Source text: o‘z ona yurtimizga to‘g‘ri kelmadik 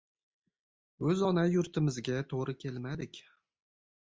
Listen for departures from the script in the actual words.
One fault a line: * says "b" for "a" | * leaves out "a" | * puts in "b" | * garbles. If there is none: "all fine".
all fine